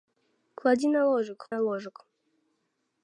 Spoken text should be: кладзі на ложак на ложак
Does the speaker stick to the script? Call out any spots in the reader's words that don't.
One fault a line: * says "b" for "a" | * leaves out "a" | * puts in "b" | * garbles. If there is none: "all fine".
all fine